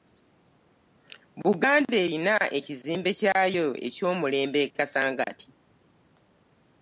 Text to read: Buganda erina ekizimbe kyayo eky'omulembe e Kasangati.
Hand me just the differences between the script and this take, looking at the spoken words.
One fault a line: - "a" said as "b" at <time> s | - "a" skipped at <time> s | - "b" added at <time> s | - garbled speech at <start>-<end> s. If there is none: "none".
none